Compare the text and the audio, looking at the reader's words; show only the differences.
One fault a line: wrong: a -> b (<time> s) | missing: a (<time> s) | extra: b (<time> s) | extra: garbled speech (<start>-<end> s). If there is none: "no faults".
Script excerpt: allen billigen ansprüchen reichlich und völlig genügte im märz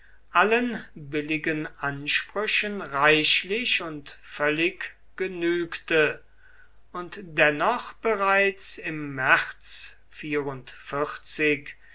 extra: und dennoch bereits (6.9 s)